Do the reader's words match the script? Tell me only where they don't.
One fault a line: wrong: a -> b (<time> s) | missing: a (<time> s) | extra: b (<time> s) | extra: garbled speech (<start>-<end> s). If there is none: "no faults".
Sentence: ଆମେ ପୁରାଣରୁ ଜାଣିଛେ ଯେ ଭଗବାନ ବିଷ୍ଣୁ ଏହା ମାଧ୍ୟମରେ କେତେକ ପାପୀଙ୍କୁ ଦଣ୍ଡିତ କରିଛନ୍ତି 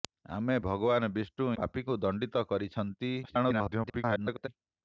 missing: ପୁରାଣରୁ ଜାଣିଛେ ଯେ (0.5 s)
missing: ଏହା ମାଧ୍ୟମରେ କେତେକ (1.5 s)
extra: garbled speech (3.2-4.5 s)